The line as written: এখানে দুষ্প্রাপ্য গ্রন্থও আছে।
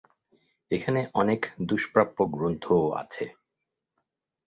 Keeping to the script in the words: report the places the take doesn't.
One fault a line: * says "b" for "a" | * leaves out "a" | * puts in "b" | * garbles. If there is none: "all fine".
* puts in "অনেক"